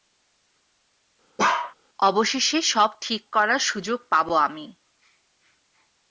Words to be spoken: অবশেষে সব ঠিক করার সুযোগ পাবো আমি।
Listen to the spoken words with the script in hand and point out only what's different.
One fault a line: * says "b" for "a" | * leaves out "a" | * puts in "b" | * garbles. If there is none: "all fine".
all fine